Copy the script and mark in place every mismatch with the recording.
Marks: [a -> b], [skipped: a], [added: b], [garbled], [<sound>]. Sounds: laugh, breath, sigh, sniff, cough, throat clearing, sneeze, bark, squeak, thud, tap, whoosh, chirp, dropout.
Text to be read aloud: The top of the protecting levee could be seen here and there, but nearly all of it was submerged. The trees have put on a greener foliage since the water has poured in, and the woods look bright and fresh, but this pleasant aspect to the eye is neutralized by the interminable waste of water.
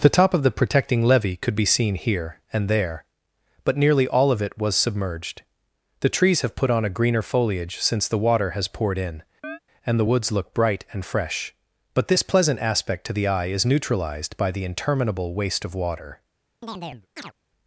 The top of the protecting levee could be seen here and there, but nearly all of it was submerged. The trees have put on a greener foliage since the water has poured in, [chirp] and the woods look bright and fresh, but this pleasant aspect to the eye is neutralized by the interminable waste of water. [chirp]